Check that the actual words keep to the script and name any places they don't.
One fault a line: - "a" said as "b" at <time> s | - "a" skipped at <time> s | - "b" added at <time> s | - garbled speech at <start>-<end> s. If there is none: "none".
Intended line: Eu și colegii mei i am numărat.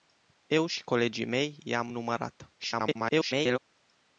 - garbled speech at 2.6-3.6 s